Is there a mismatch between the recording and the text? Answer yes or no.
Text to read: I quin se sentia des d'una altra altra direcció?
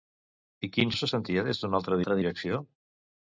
no